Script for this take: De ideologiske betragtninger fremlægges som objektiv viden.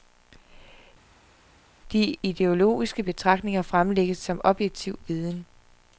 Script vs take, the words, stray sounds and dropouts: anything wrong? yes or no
no